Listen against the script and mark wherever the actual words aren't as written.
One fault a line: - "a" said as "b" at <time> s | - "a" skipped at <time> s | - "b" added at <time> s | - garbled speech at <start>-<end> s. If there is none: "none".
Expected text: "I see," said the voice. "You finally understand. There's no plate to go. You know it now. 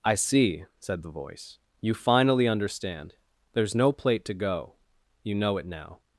none